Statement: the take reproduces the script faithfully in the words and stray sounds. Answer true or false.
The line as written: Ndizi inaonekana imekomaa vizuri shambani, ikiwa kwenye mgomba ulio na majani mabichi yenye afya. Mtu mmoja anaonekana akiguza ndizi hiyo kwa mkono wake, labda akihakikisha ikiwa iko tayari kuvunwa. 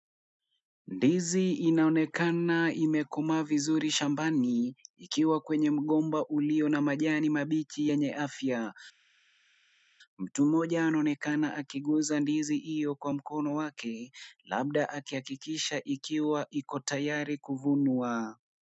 true